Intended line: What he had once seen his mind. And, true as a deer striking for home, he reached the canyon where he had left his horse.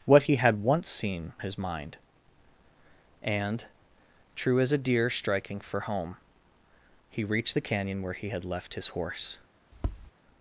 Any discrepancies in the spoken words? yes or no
no